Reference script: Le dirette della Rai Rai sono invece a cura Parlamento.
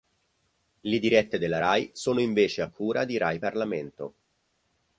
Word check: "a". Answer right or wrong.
right